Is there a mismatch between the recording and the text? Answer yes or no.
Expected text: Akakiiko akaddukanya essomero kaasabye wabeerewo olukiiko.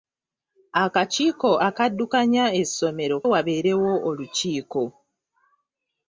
yes